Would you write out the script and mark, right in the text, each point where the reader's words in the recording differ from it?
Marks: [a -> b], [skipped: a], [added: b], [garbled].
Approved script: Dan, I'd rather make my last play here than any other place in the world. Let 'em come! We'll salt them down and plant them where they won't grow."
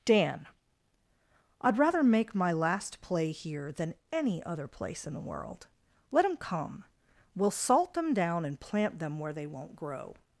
Dan, I'd rather make my last play here than any other place in the world. Let 'em come! We'll salt them down and plant them where they won't grow."